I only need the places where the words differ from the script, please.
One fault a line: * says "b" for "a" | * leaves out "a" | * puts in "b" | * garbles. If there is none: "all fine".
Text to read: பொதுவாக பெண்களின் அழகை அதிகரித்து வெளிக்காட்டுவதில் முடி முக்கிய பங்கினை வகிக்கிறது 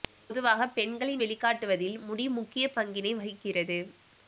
* leaves out "அழகை அதிகரித்து"